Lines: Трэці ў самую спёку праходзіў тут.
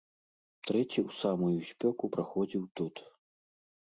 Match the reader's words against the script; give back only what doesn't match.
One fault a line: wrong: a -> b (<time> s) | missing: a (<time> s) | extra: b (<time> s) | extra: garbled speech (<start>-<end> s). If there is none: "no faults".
no faults